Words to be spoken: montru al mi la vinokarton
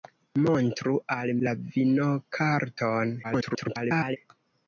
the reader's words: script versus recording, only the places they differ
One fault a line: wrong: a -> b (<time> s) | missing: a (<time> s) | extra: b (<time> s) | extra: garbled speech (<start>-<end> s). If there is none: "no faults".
missing: mi (1.3 s)
extra: garbled speech (3.2-4.2 s)